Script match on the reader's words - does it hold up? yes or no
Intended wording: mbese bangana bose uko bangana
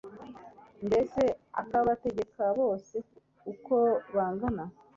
no